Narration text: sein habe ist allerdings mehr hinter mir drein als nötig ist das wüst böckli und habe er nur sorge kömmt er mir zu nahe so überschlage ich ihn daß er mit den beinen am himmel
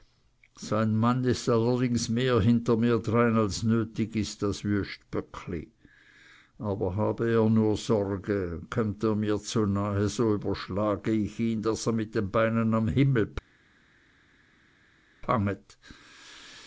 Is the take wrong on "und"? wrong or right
wrong